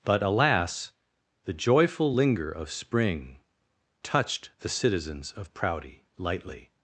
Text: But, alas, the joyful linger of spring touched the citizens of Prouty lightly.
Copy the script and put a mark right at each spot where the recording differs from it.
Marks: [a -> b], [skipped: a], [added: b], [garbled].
But, alas, the joyful linger of spring touched the citizens of Prouty lightly.